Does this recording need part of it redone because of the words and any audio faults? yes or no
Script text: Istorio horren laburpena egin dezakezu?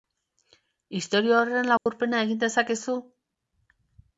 yes